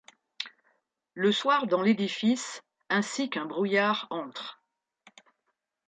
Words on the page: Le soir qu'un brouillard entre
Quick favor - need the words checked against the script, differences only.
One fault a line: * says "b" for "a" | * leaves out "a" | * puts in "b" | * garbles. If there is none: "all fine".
* puts in "dans l'édifice ainsi"